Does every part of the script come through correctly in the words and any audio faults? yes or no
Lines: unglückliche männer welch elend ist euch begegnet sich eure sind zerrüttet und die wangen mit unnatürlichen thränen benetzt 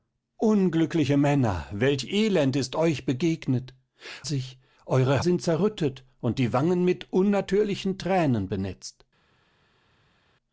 yes